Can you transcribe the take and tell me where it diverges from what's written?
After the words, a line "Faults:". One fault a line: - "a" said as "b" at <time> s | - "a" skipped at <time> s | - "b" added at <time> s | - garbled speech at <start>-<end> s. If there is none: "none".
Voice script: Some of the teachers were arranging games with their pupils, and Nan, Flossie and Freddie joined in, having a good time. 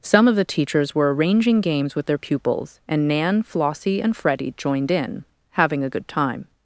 Some of the teachers were arranging games with their pupils, and Nan, Flossie and Freddie joined in, having a good time.
Faults:
none